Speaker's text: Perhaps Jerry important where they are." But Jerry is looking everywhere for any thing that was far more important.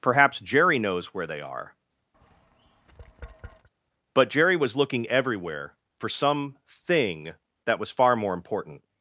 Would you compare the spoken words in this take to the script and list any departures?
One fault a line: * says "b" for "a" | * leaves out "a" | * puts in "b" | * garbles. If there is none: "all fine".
* says "knows" for "important"
* says "was" for "is"
* says "some" for "any"